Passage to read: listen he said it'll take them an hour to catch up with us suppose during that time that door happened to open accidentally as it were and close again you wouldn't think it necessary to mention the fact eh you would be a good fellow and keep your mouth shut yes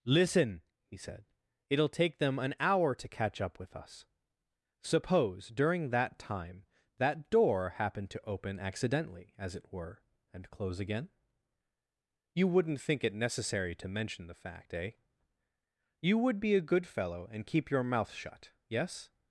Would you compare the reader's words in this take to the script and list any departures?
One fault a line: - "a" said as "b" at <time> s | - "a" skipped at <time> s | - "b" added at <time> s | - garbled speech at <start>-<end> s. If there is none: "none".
none